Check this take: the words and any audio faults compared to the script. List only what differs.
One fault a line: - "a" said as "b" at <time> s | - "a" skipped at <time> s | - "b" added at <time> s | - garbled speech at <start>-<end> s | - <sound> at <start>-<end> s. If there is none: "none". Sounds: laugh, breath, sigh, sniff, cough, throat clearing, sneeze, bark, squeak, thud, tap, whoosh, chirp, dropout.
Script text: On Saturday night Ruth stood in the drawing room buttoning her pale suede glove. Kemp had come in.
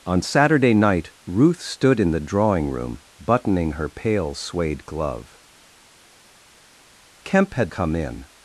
none